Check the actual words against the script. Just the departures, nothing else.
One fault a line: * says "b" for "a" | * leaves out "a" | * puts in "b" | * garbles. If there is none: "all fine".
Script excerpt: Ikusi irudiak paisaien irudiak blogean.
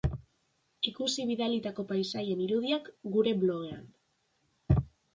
* says "bidalitako" for "irudiak"
* puts in "gure"